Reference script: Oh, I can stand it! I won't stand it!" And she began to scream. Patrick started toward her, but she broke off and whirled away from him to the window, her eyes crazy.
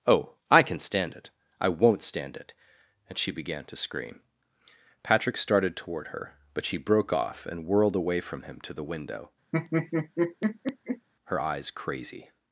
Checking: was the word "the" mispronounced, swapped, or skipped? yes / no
no